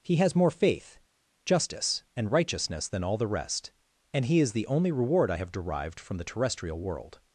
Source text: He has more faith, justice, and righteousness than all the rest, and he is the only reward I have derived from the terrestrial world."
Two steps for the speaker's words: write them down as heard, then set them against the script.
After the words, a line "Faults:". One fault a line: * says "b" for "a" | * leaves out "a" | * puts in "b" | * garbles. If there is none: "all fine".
He has more faith, justice, and righteousness than all the rest, and he is the only reward I have derived from the terrestrial world."
Faults:
all fine